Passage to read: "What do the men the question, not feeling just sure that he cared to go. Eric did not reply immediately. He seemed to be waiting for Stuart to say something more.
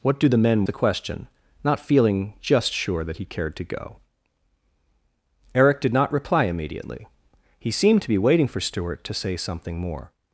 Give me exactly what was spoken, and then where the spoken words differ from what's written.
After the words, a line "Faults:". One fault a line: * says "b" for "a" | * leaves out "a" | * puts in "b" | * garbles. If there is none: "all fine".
"What do the men the question, not feeling just sure that he cared to go. Eric did not reply immediately. He seemed to be waiting for Stuart to say something more.
Faults:
all fine